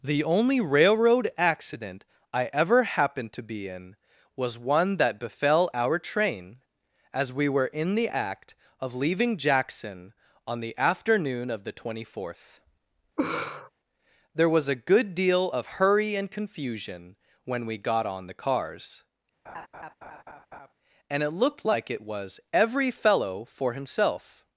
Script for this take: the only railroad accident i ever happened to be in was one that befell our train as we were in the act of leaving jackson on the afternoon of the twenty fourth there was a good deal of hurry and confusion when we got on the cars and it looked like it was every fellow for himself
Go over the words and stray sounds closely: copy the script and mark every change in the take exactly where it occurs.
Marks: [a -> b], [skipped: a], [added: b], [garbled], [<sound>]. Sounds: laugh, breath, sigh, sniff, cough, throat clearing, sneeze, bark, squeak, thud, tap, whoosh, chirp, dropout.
the only railroad accident i ever happened to be in was one that befell our train as we were in the act of leaving jackson on the afternoon of the twenty fourth [laugh] there was a good deal of hurry and confusion when we got on the cars [laugh] and it looked like it was every fellow for himself